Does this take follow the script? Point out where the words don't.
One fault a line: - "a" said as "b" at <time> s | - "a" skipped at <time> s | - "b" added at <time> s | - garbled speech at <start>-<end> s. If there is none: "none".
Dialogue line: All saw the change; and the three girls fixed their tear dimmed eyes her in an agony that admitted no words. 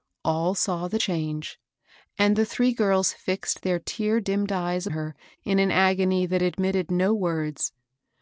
none